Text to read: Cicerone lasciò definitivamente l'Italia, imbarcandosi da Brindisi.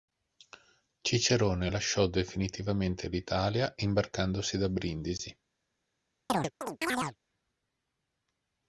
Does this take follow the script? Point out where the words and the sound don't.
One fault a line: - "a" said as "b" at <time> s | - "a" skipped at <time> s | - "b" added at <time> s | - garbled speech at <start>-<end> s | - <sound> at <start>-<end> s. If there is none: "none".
- chirp at 6.3-7.2 s